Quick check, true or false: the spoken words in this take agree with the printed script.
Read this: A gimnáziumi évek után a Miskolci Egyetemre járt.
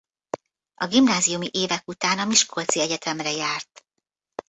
true